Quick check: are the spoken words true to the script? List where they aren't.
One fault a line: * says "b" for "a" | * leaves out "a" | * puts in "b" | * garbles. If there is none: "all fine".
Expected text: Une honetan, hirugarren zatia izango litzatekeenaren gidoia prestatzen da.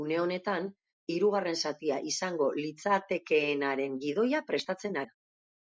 all fine